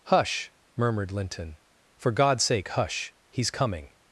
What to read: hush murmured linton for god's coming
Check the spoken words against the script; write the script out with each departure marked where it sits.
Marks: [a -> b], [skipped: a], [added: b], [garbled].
hush murmured linton for god's [added: sake hush he's] coming